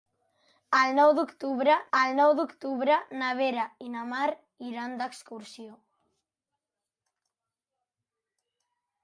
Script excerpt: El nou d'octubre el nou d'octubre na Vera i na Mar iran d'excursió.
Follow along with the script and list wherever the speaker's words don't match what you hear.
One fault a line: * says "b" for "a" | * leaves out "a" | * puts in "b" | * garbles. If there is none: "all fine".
all fine